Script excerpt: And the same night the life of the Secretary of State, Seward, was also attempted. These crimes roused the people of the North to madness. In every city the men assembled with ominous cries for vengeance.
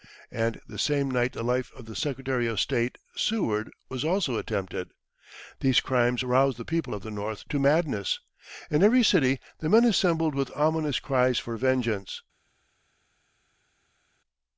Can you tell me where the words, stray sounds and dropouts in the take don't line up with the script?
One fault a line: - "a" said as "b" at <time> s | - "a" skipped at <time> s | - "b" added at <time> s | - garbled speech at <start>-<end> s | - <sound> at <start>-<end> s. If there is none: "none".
none